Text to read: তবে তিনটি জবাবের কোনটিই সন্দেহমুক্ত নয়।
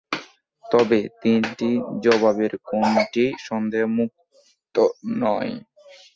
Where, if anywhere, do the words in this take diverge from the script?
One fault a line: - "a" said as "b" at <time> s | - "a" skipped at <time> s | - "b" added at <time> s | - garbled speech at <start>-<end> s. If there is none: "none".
none